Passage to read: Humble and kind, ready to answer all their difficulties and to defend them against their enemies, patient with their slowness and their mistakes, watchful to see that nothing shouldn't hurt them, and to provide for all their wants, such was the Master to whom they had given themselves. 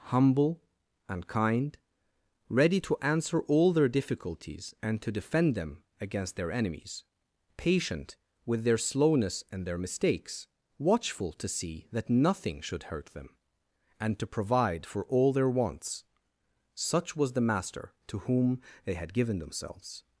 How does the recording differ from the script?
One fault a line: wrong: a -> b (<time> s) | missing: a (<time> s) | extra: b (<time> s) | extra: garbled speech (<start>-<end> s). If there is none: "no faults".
wrong: shouldn't -> should (12.6 s)